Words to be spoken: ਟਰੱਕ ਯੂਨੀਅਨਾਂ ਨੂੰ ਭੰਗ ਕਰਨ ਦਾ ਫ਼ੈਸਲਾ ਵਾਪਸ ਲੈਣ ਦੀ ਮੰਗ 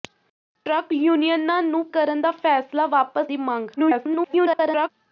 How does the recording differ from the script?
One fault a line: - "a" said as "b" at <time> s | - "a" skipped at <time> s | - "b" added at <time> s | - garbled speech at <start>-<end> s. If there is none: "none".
- "ਭੰਗ" skipped at 1.8 s
- "ਲੈਣ" skipped at 3.3 s
- garbled speech at 3.8-4.9 s